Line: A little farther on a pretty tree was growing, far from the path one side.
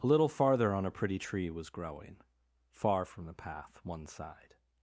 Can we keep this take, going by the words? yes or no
yes